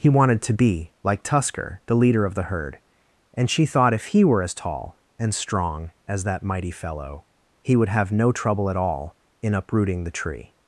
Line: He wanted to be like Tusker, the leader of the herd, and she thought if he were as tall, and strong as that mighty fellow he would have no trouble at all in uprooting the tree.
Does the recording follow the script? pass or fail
pass